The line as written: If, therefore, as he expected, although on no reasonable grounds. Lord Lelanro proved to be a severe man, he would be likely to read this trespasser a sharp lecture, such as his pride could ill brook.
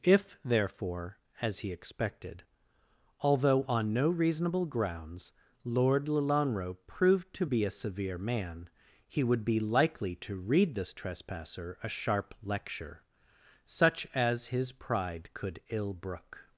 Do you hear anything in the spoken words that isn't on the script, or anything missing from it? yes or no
no